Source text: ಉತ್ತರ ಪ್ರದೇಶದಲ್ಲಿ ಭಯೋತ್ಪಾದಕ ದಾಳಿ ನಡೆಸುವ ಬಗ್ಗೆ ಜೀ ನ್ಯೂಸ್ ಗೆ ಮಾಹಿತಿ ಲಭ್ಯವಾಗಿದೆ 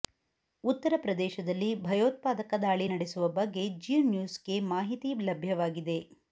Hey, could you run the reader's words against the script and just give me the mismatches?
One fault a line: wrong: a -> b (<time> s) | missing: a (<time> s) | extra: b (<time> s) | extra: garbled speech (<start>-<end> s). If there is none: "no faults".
no faults